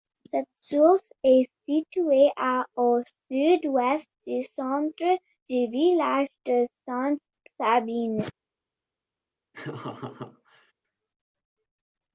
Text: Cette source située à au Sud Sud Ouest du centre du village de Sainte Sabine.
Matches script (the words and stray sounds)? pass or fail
fail